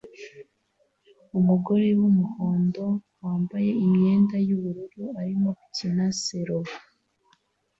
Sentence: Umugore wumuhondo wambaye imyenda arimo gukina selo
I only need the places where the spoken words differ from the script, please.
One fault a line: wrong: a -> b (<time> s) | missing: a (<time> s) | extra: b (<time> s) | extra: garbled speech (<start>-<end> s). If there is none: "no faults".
extra: yubururu (4.5 s)